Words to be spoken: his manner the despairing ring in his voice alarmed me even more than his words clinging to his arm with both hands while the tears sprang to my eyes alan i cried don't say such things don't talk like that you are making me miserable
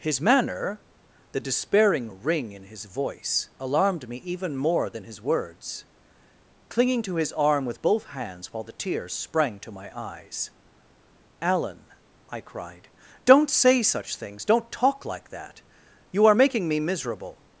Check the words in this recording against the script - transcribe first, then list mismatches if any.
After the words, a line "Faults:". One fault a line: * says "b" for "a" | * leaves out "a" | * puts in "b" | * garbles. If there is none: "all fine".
his manner the despairing ring in his voice alarmed me even more than his words clinging to his arm with both hands while the tears sprang to my eyes alan i cried don't say such things don't talk like that you are making me miserable
Faults:
all fine